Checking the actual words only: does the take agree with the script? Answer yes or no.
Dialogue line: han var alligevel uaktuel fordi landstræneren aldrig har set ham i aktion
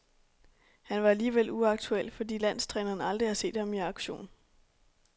yes